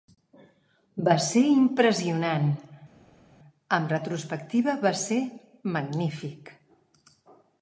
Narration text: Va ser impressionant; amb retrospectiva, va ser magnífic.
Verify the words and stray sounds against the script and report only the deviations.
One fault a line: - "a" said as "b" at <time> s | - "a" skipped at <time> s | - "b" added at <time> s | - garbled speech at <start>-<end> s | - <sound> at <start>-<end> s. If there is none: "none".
none